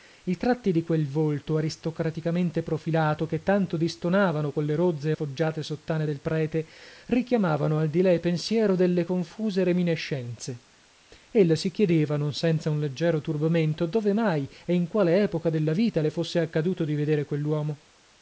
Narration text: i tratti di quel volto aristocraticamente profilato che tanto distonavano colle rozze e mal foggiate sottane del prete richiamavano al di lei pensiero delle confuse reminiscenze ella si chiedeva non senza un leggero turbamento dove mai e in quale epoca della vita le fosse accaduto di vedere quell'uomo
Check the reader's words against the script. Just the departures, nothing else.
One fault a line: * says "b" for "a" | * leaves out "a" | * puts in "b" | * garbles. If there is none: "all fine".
* leaves out "mal"